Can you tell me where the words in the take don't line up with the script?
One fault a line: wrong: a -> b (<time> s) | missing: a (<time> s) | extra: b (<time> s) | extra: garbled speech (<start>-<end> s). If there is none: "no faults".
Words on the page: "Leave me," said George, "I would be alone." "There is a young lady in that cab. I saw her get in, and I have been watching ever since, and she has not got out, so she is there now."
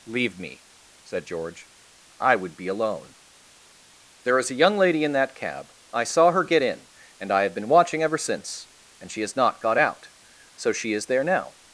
no faults